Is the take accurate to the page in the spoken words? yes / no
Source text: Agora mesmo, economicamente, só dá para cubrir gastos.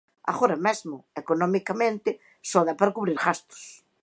yes